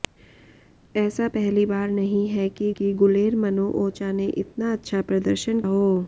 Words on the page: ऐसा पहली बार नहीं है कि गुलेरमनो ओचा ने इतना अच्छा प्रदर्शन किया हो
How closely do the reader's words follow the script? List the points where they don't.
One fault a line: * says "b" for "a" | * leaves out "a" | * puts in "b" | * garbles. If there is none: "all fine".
* puts in "कि"
* leaves out "किया"